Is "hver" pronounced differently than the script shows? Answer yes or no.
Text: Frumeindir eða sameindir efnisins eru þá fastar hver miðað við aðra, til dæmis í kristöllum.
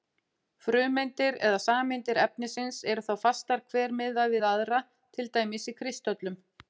no